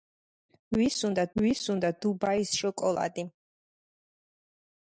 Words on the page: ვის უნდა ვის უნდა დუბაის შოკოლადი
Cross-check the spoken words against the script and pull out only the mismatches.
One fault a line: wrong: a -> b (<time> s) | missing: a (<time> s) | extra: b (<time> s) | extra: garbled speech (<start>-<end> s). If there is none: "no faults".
no faults